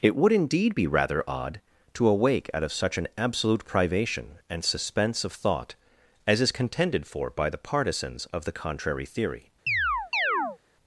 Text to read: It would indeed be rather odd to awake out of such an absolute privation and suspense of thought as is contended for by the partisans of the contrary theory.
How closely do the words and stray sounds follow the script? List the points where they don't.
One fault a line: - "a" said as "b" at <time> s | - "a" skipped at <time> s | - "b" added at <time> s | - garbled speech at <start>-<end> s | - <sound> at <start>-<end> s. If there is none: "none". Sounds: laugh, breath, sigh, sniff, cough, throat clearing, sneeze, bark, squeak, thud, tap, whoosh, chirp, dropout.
- chirp at 9.7-10.6 s